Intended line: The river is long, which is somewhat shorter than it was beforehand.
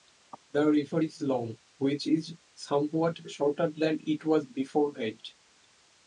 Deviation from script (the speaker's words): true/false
false